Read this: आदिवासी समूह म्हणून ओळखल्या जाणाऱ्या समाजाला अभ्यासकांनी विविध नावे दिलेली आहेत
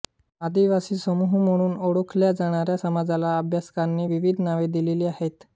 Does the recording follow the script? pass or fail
pass